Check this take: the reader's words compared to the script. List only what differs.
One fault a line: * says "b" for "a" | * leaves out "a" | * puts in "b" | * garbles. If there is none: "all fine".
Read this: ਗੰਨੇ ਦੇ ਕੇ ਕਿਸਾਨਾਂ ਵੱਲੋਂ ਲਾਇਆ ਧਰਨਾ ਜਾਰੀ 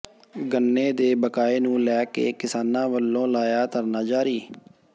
* puts in "ਬਕਾਏ ਨੂੰ ਲੈ"